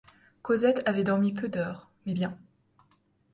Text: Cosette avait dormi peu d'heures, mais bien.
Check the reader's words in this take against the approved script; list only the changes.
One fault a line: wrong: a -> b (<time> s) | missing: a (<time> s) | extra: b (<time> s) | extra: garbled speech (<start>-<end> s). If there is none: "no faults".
no faults